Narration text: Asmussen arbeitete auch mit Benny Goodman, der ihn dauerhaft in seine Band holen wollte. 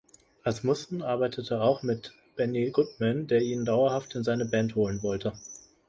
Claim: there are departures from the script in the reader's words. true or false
false